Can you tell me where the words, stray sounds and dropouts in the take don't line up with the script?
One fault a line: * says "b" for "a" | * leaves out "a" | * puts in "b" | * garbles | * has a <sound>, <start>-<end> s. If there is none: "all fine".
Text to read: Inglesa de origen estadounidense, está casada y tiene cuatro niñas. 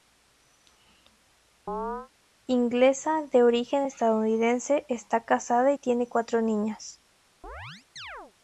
* has a chirp, 1.7-2.1 s
* has a chirp, 7.4-8.3 s